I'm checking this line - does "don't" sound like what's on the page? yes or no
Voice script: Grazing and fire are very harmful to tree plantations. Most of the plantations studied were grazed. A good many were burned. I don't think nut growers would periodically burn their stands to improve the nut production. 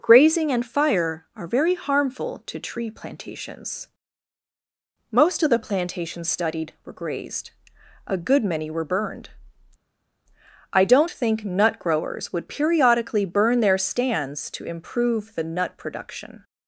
yes